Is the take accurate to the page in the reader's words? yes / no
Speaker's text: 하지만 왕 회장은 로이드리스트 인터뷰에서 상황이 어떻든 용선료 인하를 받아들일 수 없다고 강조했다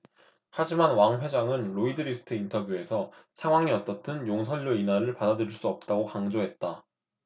yes